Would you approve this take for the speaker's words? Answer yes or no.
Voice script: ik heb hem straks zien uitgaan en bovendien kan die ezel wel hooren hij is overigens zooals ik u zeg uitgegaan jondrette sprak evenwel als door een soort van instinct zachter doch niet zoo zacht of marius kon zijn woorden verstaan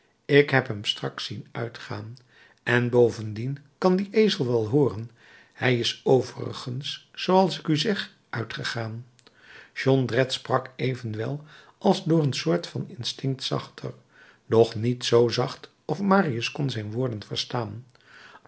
yes